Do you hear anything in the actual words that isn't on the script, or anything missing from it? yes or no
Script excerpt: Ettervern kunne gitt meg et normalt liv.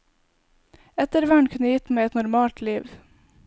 no